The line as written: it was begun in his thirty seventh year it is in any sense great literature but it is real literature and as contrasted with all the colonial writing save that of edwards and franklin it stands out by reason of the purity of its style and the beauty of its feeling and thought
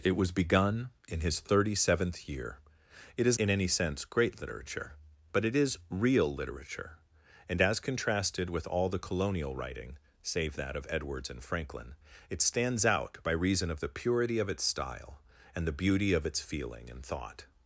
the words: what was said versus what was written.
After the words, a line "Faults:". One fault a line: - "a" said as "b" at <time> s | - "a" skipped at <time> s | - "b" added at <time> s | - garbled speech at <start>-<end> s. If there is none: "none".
it was begun in his thirty seventh year it is in any sense great literature but it is real literature and as contrasted with all the colonial writing save that of edwards and franklin it stands out by reason of the purity of its style and the beauty of its feeling and thought
Faults:
none